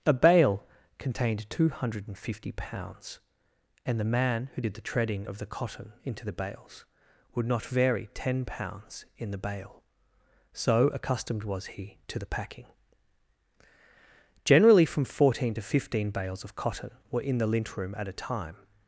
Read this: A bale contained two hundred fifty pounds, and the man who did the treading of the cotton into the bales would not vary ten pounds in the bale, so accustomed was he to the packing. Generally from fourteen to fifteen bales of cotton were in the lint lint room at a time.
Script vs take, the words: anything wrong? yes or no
yes